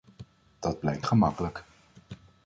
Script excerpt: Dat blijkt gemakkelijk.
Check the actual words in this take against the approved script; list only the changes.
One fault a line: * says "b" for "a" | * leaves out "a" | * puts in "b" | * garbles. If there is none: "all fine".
all fine